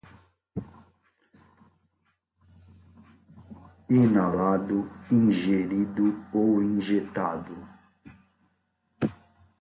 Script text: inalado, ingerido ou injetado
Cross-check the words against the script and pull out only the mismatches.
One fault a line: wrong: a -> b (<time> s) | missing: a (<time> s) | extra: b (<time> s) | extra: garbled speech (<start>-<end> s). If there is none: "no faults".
no faults